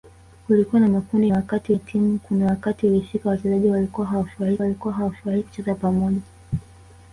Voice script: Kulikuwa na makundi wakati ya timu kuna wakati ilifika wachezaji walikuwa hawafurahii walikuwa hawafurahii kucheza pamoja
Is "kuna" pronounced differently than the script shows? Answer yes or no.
no